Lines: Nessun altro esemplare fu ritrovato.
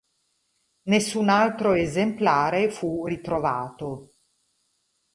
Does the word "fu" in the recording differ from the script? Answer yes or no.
no